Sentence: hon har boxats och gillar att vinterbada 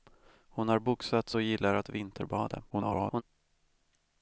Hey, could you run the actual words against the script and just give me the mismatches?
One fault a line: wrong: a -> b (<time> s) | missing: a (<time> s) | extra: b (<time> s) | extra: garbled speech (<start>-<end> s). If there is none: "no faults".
extra: garbled speech (2.7-3.2 s)